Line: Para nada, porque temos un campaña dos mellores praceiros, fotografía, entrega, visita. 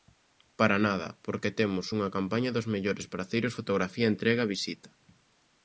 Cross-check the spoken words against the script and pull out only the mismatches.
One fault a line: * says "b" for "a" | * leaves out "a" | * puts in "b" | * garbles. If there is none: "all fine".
* says "unha" for "un"